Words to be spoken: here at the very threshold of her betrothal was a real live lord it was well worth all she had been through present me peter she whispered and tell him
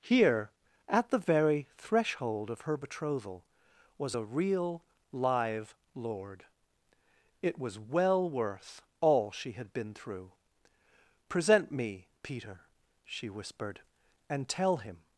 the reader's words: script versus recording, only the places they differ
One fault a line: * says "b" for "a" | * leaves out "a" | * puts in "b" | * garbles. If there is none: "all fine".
all fine